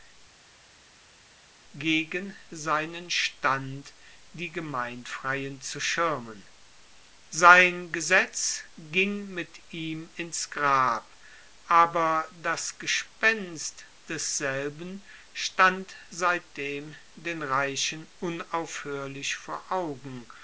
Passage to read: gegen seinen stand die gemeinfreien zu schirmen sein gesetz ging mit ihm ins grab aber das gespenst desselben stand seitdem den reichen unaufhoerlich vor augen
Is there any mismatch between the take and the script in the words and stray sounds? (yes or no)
no